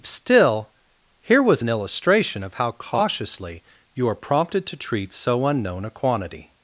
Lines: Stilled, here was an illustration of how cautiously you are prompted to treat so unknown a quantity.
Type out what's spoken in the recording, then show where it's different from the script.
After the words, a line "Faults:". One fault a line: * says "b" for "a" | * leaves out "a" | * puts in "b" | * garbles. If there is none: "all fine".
Still, here was an illustration of how cautiously you are prompted to treat so unknown a quantity.
Faults:
* says "Still" for "Stilled"